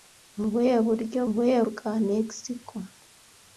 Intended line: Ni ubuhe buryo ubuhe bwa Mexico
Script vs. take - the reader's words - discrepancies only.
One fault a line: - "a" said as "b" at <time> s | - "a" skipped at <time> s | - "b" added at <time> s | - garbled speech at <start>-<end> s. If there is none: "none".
none